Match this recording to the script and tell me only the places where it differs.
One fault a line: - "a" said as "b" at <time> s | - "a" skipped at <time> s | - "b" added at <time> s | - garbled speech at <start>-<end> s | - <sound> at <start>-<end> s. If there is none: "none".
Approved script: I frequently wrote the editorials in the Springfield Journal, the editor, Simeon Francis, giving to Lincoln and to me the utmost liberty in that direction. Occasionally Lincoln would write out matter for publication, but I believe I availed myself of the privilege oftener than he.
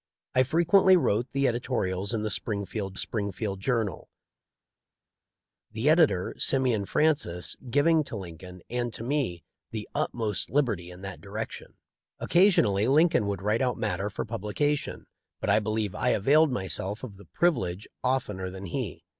- "Springfield" added at 3.0 s